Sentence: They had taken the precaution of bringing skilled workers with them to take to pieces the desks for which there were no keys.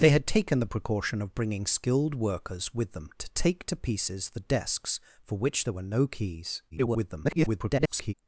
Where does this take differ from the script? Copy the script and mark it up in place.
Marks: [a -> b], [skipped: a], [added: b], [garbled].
They had taken the precaution of bringing skilled workers with them to take to pieces the desks for which there were no keys. [garbled]